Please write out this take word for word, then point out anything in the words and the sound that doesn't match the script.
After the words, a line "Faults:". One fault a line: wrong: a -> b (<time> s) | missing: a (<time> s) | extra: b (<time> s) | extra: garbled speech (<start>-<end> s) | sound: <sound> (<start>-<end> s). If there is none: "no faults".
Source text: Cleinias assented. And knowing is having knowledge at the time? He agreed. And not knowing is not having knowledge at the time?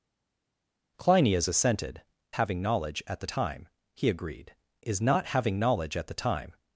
Cleinias assented. Having knowledge at the time? He agreed. Is not having knowledge at the time?
Faults:
missing: And knowing is (2.0 s)
missing: And not knowing (4.5 s)